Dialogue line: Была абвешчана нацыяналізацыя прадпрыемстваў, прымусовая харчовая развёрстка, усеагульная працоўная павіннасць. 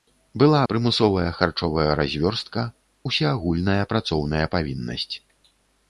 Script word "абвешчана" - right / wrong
wrong